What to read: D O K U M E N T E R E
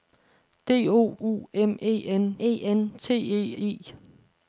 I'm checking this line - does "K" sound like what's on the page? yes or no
no